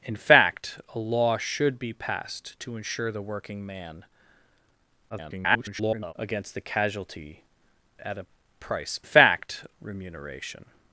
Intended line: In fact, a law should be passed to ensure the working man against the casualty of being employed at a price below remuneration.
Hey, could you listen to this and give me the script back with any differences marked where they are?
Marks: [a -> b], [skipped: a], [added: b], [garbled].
In fact, a law should be passed to ensure the working man [garbled] against the casualty [skipped: of being employed] at a price [below -> fact] remuneration.